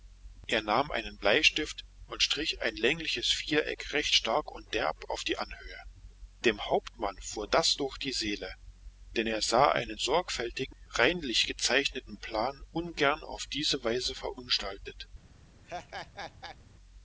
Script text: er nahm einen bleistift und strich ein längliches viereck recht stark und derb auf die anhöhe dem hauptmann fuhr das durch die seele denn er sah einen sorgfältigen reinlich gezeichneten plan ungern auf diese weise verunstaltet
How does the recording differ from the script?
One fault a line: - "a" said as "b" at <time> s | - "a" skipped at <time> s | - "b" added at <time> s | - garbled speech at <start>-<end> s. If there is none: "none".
none